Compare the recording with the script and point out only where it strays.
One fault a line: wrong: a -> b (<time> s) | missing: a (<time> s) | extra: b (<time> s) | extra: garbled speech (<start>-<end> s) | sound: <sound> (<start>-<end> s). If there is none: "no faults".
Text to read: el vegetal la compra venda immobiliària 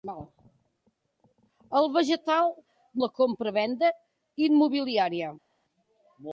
no faults